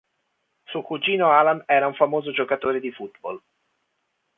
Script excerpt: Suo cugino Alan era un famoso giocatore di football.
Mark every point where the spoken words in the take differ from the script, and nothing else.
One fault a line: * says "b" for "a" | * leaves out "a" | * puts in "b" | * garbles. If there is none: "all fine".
all fine